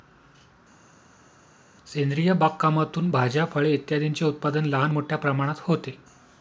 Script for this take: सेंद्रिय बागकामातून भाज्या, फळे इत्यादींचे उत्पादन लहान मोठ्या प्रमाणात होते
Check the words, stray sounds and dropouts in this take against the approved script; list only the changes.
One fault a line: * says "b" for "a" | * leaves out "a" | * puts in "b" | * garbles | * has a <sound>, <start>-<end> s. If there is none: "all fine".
all fine